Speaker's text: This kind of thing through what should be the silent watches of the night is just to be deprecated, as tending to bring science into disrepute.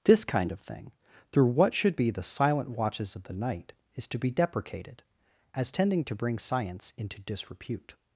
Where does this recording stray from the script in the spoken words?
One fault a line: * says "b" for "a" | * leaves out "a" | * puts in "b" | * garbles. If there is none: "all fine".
* leaves out "just"